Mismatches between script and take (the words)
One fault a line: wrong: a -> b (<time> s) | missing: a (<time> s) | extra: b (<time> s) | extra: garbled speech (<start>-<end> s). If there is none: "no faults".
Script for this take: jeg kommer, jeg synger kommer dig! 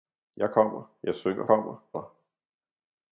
no faults